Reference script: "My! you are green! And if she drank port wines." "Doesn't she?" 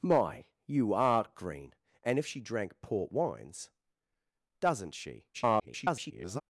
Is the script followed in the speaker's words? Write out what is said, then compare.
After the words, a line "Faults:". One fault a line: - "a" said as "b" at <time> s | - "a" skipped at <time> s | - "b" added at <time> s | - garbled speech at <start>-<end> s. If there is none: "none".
"My! you are green! And if she drank port wines." "Doesn't she?" [garbled]
Faults:
- garbled speech at 5.3-6.4 s